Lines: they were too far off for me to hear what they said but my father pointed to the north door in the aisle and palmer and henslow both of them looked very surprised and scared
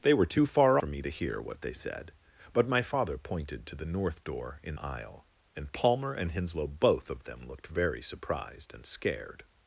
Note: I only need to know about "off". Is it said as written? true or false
false